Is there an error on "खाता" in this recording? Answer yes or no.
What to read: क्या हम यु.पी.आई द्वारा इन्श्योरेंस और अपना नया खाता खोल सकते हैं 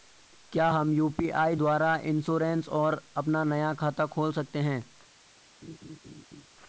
no